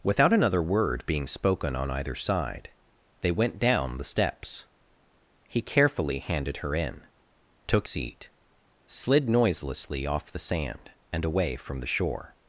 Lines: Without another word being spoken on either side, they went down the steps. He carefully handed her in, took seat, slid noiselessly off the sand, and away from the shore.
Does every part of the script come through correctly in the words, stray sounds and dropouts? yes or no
yes